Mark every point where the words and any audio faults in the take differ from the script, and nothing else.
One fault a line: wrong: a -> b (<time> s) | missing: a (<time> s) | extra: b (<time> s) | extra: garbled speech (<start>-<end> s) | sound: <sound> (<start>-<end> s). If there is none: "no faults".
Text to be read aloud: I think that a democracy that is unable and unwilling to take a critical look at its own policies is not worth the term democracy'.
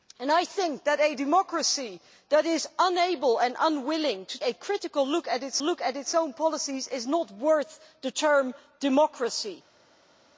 missing: take (4.4 s)
extra: look at its (5.6 s)